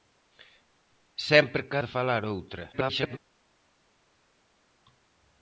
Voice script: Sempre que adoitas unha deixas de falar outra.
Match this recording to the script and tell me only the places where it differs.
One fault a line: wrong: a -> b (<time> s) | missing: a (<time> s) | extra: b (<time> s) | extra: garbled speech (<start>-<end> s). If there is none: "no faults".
missing: adoitas unha deixas (1.8 s)
extra: garbled speech (2.7-3.2 s)